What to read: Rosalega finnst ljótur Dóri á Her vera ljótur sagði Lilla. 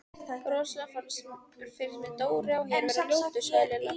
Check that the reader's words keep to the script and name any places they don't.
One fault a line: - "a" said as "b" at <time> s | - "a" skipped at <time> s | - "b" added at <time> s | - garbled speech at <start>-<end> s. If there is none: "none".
- "ljótur" said as "mér" at 2.0 s